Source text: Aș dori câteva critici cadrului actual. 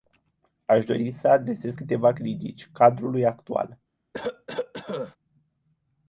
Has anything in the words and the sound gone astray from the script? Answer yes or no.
yes